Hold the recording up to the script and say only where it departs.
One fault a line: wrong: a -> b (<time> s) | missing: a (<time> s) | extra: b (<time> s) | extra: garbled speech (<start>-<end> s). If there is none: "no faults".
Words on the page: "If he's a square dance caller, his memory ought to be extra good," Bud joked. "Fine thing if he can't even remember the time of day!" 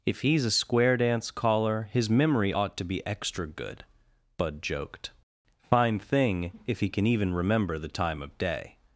wrong: can't -> can (6.9 s)